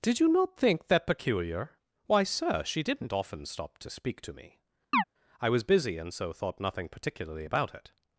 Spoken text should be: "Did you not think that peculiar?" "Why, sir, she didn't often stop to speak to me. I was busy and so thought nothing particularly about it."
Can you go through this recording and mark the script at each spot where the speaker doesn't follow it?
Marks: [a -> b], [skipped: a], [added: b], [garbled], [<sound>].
"Did you not think that peculiar?" "Why, sir, she didn't often stop to speak to me. [chirp] I was busy and so thought nothing particularly about it."